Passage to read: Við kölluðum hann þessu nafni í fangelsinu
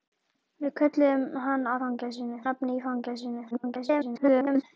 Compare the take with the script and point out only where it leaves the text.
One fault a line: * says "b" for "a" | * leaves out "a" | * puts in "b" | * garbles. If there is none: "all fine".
* says "fangelsinu" for "þessu"
* garbles